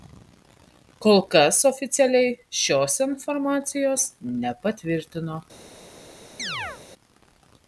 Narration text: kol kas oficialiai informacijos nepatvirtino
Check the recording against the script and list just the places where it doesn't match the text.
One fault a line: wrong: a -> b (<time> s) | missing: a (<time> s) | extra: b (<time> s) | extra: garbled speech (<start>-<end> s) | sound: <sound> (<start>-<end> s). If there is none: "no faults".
extra: šios (2.6 s)
sound: chirp (6.4-6.8 s)